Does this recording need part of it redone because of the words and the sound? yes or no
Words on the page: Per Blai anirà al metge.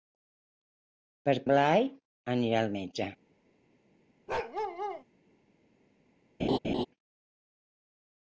yes